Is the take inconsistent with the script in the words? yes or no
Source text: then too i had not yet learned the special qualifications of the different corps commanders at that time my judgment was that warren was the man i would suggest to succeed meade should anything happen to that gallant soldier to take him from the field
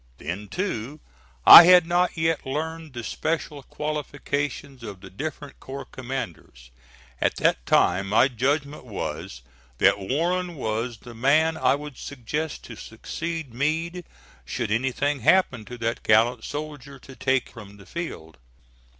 yes